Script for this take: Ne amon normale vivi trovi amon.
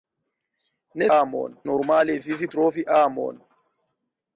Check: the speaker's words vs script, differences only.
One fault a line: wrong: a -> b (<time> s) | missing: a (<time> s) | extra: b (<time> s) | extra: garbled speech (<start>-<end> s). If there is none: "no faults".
no faults